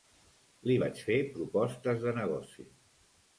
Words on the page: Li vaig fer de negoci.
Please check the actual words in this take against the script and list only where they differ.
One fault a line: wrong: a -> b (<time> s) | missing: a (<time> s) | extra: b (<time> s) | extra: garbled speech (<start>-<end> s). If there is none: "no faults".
extra: propostes (1.3 s)